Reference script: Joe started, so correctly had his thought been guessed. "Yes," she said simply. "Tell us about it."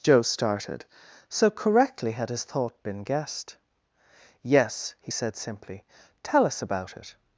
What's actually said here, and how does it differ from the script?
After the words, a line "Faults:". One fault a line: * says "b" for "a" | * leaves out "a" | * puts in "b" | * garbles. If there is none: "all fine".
Joe started, so correctly had his thought been guessed. "Yes," he said simply. "Tell us about it."
Faults:
* says "he" for "she"